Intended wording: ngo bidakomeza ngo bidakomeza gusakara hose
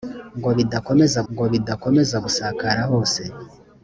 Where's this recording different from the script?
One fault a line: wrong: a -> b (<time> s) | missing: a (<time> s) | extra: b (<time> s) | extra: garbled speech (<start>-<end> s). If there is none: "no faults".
no faults